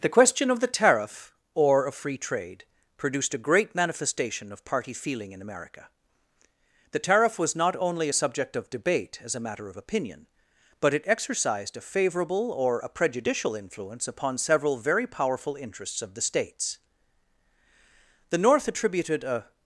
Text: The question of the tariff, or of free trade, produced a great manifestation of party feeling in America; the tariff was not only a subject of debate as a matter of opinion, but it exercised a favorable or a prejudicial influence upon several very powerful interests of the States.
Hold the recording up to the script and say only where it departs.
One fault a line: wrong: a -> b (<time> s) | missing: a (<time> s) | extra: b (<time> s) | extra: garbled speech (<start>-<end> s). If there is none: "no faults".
extra: The North attributed a (18.3 s)